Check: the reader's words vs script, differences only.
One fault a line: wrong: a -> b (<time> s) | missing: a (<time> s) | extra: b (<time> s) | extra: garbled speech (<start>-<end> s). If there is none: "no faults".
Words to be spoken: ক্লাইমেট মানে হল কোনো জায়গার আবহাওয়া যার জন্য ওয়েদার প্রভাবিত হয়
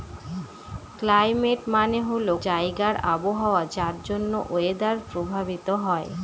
missing: কোনো (2.3 s)